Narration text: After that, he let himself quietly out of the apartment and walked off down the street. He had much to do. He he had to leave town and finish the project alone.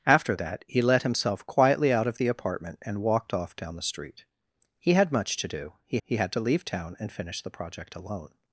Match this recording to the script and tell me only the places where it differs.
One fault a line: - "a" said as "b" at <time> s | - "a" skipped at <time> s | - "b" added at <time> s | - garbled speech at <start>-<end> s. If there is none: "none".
none